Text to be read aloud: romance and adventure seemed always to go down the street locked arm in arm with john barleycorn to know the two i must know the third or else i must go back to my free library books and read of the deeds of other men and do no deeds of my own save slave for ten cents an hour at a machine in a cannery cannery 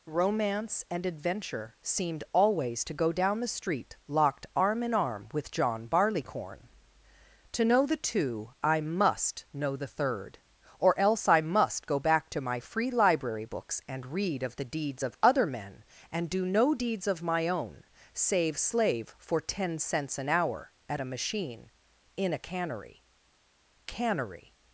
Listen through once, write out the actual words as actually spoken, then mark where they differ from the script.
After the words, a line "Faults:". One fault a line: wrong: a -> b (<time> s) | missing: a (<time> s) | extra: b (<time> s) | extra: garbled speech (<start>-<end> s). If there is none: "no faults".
romance and adventure seemed always to go down the street locked arm in arm with john barleycorn to know the two i must know the third or else i must go back to my free library books and read of the deeds of other men and do no deeds of my own save slave for ten cents an hour at a machine in a cannery cannery
Faults:
no faults